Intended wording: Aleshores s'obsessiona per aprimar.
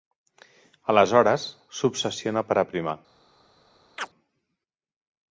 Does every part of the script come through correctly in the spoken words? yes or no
yes